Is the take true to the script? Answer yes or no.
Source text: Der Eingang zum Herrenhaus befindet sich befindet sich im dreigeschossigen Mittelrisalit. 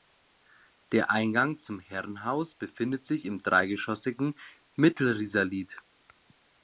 no